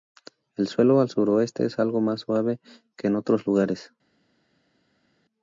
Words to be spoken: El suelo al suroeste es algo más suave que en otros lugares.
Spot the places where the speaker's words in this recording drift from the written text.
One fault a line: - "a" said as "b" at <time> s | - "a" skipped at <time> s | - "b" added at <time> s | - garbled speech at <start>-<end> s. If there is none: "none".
none